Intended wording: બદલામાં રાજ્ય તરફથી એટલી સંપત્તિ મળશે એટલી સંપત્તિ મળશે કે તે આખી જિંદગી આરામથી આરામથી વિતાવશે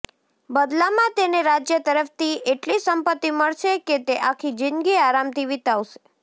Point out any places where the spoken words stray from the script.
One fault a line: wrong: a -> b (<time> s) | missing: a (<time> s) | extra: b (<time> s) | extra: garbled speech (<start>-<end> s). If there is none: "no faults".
extra: તેને (1.1 s)
missing: એટલી સંપત્તિ મળશે (3.8 s)
missing: આરામથી (5.5 s)